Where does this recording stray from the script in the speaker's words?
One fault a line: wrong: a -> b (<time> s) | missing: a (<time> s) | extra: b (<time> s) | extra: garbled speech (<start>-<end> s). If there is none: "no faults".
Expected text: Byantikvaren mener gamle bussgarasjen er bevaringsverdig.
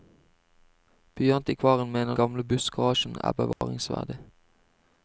no faults